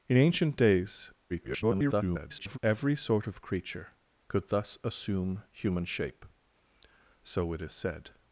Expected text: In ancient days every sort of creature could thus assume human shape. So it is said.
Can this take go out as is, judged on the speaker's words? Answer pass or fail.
fail